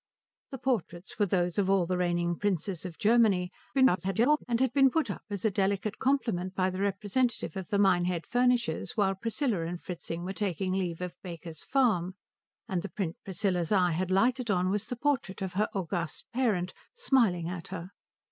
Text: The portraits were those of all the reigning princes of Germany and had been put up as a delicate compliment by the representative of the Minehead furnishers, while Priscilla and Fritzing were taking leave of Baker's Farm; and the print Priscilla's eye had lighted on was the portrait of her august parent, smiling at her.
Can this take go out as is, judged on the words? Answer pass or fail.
fail